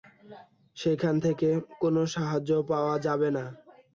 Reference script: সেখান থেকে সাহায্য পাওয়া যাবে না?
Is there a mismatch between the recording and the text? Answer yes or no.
yes